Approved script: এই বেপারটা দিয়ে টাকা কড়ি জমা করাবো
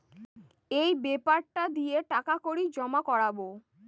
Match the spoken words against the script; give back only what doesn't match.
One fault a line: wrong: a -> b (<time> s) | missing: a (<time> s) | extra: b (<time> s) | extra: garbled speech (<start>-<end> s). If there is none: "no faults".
no faults